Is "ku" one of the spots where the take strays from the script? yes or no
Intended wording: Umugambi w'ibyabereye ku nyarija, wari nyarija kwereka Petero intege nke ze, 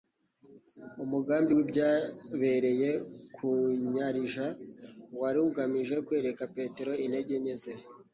no